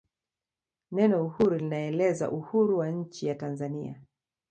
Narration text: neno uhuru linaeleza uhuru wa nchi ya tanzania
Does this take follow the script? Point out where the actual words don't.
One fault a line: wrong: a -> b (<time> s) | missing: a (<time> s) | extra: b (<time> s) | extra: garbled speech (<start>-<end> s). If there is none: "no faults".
no faults